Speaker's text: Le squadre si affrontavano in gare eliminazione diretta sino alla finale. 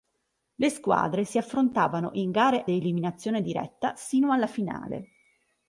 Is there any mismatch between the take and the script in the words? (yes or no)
no